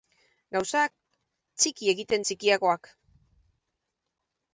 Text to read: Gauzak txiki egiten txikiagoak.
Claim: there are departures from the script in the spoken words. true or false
false